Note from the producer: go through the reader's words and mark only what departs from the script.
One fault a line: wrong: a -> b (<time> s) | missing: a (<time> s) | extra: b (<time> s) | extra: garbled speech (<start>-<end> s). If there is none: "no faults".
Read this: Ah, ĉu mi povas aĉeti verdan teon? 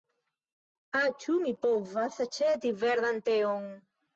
no faults